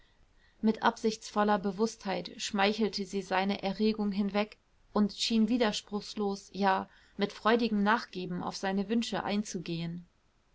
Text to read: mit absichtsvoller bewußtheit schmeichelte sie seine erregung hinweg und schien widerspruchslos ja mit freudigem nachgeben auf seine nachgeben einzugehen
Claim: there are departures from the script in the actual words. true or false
true